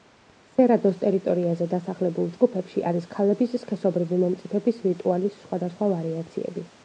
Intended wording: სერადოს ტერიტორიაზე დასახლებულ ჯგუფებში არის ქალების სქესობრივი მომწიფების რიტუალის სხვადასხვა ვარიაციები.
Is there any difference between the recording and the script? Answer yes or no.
no